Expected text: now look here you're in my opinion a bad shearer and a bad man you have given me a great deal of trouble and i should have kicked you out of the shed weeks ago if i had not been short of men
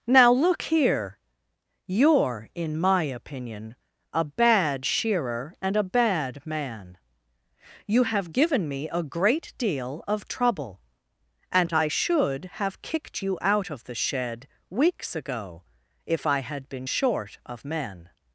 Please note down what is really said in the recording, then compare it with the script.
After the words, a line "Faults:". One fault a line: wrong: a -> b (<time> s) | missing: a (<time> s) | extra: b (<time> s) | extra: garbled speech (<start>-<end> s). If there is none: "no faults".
now look here you're in my opinion a bad shearer and a bad man you have given me a great deal of trouble and i should have kicked you out of the shed weeks ago if i had been short of men
Faults:
missing: not (16.7 s)